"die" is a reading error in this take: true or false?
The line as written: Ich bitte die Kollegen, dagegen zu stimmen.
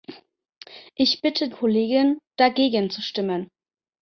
true